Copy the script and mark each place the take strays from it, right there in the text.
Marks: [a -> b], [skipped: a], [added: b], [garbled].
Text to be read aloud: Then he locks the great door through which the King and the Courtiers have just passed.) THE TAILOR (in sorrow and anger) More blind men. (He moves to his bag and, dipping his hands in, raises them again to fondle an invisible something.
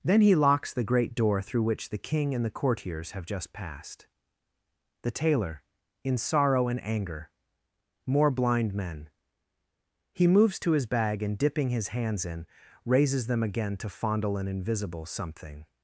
Then he locks the great door through which the King and the Courtiers have just passed.) THE TAILOR (in sorrow and anger) More blind men. (He moves to his bag and, dipping his hands in, raises them again to fondle an invisible something.